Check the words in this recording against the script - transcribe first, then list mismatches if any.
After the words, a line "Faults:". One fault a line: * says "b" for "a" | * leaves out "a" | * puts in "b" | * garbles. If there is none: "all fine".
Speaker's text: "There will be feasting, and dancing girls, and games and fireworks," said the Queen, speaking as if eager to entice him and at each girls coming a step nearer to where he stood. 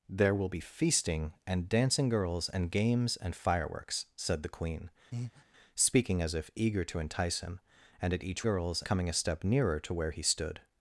"There will be feasting, and dancing girls, and games and fireworks," said the Queen, speaking as if eager to entice him and at each girls coming a step nearer to where he stood.
Faults:
all fine